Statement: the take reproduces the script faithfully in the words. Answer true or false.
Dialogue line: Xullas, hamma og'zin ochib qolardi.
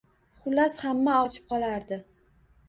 false